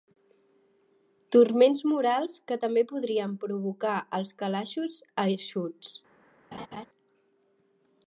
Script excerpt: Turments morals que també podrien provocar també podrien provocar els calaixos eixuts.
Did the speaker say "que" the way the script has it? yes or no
yes